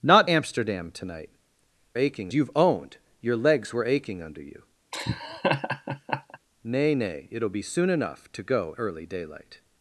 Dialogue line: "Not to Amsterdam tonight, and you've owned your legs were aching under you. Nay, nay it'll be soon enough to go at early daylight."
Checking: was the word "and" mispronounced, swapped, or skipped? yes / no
yes